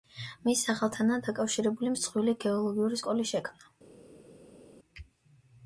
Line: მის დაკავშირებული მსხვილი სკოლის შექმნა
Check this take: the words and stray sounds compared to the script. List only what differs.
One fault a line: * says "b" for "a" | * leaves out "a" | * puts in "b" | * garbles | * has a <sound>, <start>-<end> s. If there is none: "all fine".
* puts in "სახელთანაა"
* puts in "გეოლოგიური"